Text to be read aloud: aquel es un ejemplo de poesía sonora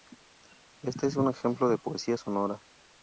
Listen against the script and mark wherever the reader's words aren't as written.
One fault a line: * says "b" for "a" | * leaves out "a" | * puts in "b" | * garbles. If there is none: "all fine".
* says "este" for "aquel"